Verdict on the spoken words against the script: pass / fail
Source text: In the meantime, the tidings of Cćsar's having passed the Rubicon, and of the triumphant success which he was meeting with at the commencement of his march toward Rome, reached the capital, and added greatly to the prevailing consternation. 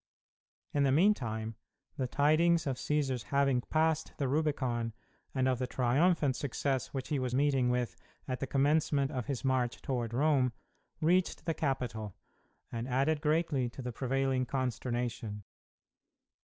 pass